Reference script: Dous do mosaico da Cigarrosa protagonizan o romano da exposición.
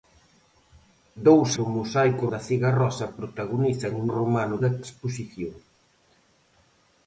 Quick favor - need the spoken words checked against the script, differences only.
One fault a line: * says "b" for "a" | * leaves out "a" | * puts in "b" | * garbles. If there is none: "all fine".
all fine